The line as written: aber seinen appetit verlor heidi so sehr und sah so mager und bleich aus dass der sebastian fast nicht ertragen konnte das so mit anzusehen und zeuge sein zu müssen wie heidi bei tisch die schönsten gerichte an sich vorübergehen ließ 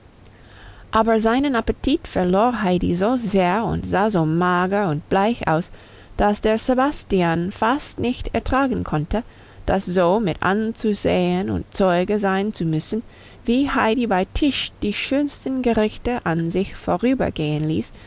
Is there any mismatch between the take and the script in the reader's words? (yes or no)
no